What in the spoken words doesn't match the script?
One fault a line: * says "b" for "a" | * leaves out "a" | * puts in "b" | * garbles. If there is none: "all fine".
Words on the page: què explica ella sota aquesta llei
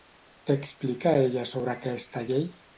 * says "sobre" for "sota"